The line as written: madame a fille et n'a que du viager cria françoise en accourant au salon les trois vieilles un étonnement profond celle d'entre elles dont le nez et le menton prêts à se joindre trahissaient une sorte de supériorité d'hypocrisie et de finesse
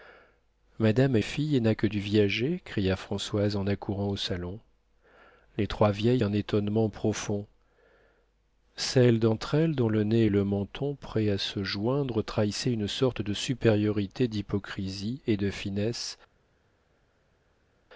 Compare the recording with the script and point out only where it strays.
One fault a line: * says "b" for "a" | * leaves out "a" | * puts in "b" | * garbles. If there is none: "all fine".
all fine